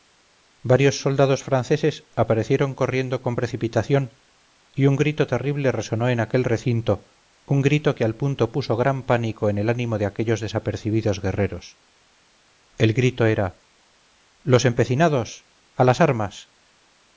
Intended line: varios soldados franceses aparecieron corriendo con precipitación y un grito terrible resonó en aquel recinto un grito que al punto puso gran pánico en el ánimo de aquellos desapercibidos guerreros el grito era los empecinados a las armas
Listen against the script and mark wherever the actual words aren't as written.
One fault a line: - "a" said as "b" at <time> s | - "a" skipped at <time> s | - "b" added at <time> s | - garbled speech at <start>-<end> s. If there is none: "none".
none